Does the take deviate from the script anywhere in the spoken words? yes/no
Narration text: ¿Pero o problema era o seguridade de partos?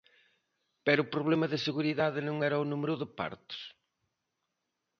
yes